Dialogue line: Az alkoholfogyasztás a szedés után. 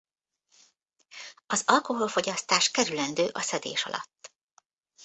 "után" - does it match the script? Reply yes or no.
no